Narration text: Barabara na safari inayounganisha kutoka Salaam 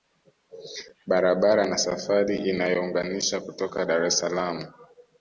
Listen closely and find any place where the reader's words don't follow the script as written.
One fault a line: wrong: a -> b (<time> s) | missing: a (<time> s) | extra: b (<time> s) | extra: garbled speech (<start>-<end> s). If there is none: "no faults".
extra: Dar es (3.8 s)